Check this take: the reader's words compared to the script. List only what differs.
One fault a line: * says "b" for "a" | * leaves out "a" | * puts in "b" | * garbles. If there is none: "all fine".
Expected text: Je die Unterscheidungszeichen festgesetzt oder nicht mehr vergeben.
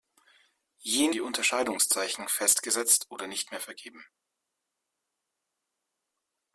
all fine